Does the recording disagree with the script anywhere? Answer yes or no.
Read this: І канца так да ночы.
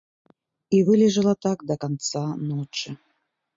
yes